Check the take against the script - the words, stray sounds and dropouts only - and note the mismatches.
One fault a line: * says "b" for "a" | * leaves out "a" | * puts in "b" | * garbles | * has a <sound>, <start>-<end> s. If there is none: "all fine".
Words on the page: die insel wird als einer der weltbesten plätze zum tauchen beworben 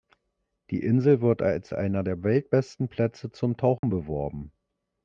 * has a dropout, 3.8-3.8 s